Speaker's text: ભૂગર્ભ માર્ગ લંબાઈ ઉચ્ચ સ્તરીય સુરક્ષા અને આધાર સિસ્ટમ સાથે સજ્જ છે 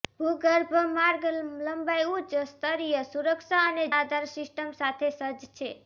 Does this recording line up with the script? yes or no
yes